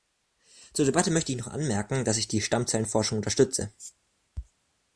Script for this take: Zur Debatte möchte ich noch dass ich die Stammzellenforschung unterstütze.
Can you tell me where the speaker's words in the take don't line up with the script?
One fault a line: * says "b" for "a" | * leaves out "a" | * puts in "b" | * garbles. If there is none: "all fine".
* puts in "anmerken"